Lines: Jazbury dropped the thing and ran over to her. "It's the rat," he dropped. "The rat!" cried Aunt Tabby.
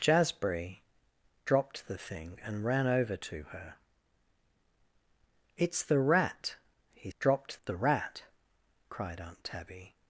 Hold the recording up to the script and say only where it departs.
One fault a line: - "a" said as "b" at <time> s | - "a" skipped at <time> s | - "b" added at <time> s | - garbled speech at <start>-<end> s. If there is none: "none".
none